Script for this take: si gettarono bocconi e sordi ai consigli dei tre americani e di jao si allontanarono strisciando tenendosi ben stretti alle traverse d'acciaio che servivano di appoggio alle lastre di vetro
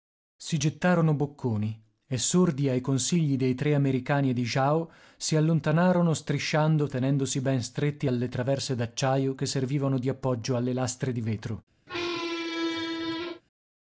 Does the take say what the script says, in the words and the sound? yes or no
no